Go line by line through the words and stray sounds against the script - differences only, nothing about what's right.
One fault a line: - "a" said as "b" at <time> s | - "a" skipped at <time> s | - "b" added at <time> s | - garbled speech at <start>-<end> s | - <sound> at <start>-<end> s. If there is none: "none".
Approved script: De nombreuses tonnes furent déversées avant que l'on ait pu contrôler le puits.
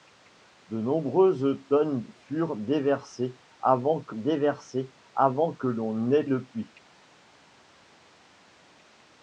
- "déversées avant que" added at 4.1 s
- "pu contrôler" skipped at 6.2 s